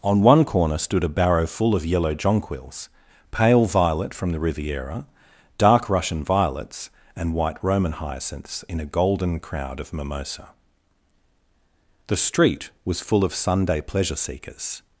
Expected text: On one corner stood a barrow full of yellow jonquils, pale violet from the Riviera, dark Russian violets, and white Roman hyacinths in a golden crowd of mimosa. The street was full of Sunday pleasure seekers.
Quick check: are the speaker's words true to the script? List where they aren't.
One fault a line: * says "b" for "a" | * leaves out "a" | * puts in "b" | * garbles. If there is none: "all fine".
all fine